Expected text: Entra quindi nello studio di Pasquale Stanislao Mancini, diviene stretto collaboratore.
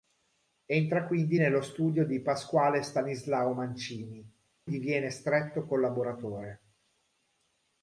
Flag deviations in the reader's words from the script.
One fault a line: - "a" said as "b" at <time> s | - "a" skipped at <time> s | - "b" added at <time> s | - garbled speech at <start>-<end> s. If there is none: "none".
none